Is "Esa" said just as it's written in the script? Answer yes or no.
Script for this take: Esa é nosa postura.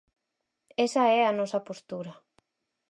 yes